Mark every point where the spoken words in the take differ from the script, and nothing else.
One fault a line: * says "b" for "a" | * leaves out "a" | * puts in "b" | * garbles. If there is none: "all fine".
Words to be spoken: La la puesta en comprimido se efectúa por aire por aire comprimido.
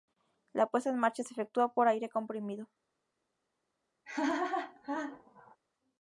* leaves out "la"
* says "marcha" for "comprimido"
* leaves out "por aire"